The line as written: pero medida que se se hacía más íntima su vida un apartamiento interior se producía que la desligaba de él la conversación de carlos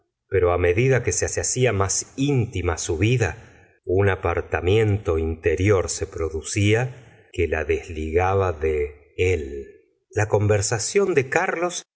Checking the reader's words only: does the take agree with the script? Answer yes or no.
yes